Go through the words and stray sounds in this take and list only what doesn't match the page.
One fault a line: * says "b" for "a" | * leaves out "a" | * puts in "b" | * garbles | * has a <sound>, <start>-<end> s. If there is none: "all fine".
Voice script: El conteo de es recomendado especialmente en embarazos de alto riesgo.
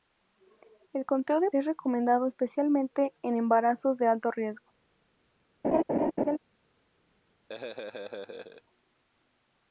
* has a laugh, 5.6-6.4 s
* has a laugh, 7.5-8.6 s